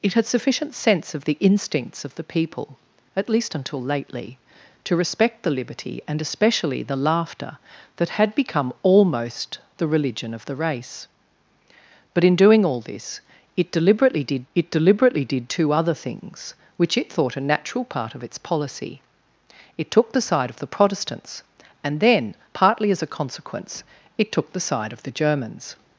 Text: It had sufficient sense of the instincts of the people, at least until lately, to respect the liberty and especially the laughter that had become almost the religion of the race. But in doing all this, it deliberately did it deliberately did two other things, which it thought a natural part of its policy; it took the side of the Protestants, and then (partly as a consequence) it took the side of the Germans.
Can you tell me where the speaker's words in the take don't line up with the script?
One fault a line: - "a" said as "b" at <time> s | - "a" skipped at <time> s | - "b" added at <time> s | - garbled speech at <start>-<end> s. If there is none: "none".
none